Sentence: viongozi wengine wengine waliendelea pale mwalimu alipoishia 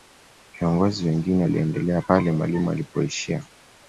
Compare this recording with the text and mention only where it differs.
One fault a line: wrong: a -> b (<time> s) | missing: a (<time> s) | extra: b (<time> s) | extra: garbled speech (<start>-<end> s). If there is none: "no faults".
missing: wengine (1.4 s)